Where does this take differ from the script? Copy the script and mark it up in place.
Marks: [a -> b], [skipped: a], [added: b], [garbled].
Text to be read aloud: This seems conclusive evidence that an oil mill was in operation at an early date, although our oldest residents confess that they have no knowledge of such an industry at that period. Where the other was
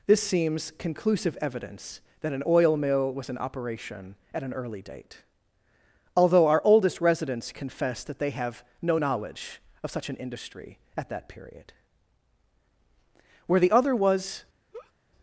This seems conclusive evidence that an oil mill was in operation at an early date, although our oldest residents confess that they have no knowledge of such an industry at that period. Where the other was